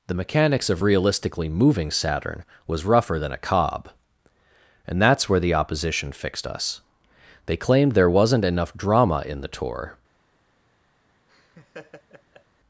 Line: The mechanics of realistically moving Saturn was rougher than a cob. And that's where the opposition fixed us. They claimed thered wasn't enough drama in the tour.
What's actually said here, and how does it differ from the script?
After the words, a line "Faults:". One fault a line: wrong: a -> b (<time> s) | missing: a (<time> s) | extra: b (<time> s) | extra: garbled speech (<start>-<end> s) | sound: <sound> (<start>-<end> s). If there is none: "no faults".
The mechanics of realistically moving Saturn was rougher than a cob. And that's where the opposition fixed us. They claimed there wasn't enough drama in the tour.
Faults:
wrong: thered -> there (7.9 s)
sound: laugh (11.3-12.4 s)